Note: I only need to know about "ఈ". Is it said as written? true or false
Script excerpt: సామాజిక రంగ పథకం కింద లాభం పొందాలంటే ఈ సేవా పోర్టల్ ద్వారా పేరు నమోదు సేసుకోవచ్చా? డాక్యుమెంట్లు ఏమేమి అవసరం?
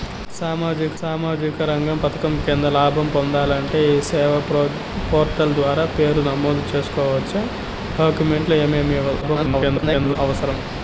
true